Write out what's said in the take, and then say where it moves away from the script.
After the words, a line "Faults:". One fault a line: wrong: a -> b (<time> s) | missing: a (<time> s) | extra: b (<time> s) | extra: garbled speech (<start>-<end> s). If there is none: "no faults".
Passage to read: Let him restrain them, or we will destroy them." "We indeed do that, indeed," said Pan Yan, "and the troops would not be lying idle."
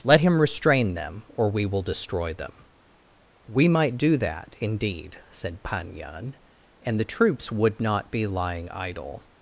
Let him restrain them, or we will destroy them." "We might do that, indeed," said Pan Yan, "and the troops would not be lying idle."
Faults:
wrong: indeed -> might (3.7 s)